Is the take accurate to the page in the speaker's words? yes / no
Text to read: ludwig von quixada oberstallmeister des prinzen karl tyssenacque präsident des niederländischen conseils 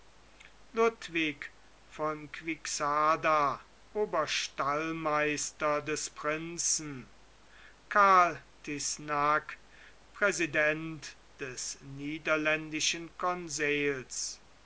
yes